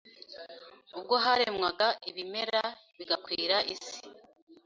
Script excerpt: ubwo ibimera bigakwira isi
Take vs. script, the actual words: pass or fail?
fail